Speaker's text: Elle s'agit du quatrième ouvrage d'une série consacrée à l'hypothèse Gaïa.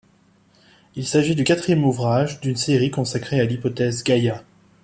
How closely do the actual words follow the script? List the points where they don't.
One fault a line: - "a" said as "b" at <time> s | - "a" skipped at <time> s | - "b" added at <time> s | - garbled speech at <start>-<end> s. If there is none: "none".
- "Elle" said as "Il" at 0.9 s